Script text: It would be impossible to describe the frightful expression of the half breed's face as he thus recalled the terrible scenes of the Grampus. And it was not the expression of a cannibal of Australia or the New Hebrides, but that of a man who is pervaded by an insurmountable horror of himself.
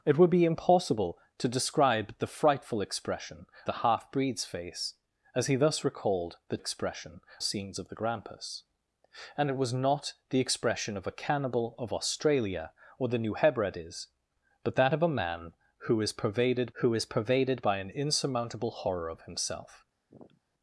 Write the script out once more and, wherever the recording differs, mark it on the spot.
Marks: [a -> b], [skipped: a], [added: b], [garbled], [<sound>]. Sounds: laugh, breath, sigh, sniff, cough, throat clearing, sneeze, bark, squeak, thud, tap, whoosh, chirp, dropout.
It would be impossible to describe the frightful expression [skipped: of] the half breed's face as he thus recalled the [terrible -> expression] scenes of the Grampus. And it was not the expression of a cannibal of Australia or the New Hebrides, but that of a man who is pervaded [added: who is pervaded] by an insurmountable horror of himself. [sniff]